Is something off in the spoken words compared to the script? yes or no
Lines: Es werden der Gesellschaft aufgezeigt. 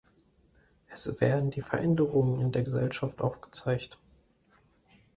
yes